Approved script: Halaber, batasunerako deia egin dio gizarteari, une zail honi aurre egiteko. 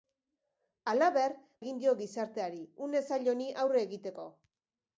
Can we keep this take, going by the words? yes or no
no